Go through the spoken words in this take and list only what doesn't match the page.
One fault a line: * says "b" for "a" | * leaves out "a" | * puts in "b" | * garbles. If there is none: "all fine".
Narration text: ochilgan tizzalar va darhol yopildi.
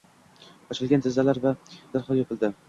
all fine